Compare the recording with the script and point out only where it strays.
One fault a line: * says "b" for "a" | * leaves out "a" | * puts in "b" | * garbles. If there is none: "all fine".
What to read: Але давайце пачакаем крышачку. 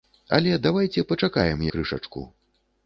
all fine